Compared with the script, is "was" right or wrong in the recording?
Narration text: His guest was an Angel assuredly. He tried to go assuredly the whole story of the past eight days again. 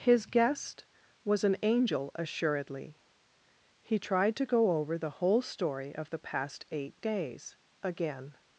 right